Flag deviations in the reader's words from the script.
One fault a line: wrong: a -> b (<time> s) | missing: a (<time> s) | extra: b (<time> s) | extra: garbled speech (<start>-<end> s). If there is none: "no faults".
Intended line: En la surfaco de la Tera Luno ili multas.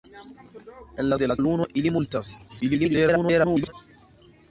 missing: surfaco (1.2 s)
missing: Tera (1.4 s)
extra: garbled speech (2.5-3.7 s)